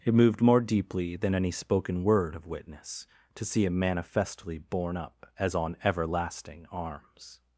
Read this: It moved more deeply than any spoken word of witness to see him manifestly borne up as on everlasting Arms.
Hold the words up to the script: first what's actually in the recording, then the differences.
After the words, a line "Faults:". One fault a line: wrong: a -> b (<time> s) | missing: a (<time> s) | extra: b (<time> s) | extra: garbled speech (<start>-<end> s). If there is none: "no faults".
It moved more deeply than any spoken word of witness to see him manifestly borne up as on everlasting Arms.
Faults:
no faults